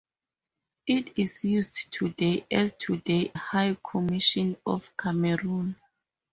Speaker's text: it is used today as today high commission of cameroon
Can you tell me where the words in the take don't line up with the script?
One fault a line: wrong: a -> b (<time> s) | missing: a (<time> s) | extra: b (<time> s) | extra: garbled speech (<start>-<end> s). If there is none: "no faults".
no faults